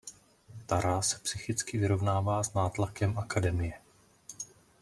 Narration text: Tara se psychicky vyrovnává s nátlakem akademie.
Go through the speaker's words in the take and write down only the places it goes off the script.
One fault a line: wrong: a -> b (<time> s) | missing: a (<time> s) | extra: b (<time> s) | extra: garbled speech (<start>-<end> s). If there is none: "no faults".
no faults